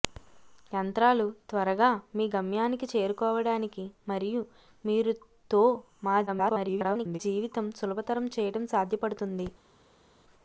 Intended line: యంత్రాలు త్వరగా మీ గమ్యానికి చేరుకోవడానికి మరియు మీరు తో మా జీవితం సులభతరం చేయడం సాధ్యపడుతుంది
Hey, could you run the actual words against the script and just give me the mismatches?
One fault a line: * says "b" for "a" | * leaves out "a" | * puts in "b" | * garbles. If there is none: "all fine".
* garbles